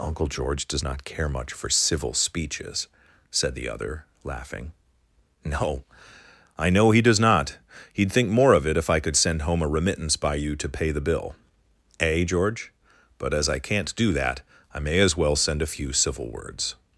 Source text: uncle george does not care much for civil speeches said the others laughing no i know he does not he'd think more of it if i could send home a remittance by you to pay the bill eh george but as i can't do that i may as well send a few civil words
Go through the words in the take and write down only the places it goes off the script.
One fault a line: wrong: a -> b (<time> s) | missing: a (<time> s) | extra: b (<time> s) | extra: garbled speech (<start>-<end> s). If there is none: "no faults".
wrong: others -> other (3.7 s)